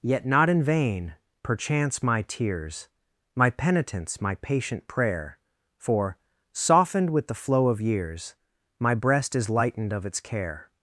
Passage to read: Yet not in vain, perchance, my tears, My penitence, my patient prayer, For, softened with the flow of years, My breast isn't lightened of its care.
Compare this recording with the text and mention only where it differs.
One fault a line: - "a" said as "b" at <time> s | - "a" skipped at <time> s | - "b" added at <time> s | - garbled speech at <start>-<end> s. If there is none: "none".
- "isn't" said as "is" at 9.3 s